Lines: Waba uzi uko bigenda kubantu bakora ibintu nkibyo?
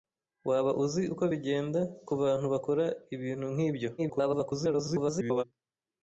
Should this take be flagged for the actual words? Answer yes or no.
yes